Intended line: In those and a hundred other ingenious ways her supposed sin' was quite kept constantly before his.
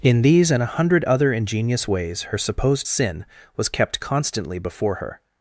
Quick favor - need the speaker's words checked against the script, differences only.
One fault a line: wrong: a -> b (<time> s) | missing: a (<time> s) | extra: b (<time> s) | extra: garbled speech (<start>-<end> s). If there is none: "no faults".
wrong: those -> these (0.2 s)
missing: quite (3.7 s)
wrong: his -> her (5.0 s)